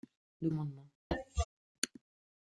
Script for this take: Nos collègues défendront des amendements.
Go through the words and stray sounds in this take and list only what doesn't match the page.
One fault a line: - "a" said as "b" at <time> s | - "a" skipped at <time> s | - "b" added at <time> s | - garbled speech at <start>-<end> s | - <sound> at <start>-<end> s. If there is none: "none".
- "collègues défendront des" skipped at 0.5 s
- cough at 1.1-1.4 s